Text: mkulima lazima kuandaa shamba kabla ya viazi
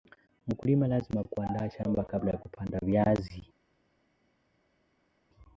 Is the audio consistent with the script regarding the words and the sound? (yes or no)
no